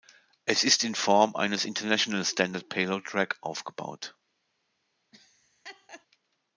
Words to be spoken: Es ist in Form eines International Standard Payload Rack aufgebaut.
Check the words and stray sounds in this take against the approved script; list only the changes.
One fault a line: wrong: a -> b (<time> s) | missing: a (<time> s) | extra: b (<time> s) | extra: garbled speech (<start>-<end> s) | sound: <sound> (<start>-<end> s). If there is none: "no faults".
sound: laugh (5.1-6.1 s)